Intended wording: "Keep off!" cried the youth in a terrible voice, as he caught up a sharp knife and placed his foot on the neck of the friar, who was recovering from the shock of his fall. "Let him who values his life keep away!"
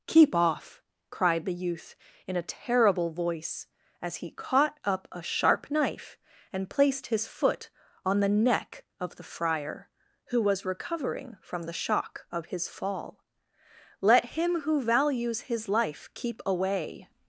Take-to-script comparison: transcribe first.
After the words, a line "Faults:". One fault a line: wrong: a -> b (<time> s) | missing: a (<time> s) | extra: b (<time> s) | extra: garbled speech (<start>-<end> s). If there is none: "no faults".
"Keep off!" cried the youth in a terrible voice, as he caught up a sharp knife and placed his foot on the neck of the friar, who was recovering from the shock of his fall. "Let him who values his life keep away!"
Faults:
no faults